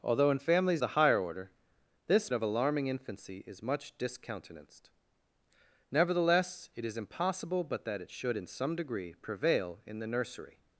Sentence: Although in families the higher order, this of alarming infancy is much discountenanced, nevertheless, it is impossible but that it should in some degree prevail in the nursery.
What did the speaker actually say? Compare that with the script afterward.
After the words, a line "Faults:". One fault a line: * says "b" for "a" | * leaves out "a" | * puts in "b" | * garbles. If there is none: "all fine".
Although in families the higher order, this of alarming infancy is much discountenanced, nevertheless, it is impossible but that it should in some degree prevail in the nursery.
Faults:
all fine